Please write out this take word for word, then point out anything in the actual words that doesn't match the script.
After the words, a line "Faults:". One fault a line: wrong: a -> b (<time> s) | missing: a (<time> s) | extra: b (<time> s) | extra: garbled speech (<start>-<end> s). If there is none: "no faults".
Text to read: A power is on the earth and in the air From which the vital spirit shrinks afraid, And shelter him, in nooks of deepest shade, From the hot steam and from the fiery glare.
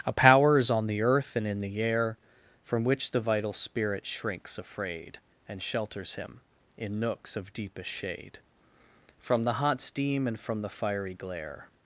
A power is on the earth and in the air From which the vital spirit shrinks afraid, And shelters him, in nooks of deepest shade, From the hot steam and from the fiery glare.
Faults:
wrong: shelter -> shelters (5.6 s)